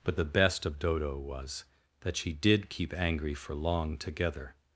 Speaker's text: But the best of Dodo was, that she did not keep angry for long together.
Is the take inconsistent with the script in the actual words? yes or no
yes